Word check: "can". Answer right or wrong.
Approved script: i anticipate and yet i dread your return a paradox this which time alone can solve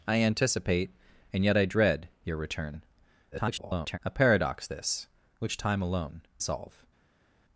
wrong